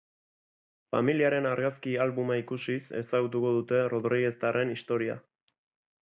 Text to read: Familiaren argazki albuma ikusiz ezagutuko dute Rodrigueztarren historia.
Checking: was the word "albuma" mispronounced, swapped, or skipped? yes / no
no